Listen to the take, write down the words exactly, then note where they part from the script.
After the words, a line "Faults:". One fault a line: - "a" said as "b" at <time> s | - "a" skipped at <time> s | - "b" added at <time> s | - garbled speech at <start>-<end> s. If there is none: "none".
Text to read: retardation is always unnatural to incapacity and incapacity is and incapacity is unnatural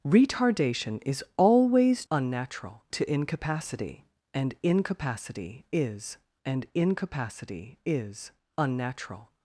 retardation is always unnatural to incapacity and incapacity is and incapacity is unnatural
Faults:
none